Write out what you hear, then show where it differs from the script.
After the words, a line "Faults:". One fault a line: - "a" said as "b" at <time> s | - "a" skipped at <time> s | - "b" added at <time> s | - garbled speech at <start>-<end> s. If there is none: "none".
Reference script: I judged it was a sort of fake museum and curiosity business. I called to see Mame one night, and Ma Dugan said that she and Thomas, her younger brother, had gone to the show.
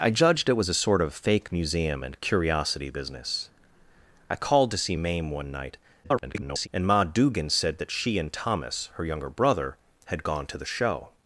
I judged it was a sort of fake museum and curiosity business. I called to see Mame one night, [garbled] and Ma Dugan said that she and Thomas, her younger brother, had gone to the show.
Faults:
- garbled speech at 6.0-6.7 s